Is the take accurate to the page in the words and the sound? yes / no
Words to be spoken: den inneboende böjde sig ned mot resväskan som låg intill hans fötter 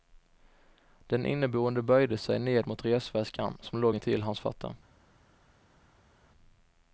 yes